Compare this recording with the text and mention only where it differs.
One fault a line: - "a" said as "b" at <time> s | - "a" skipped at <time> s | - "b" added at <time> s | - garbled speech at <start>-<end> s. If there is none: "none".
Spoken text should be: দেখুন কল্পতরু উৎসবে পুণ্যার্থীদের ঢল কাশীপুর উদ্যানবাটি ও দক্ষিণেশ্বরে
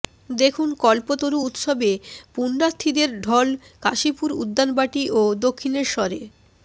none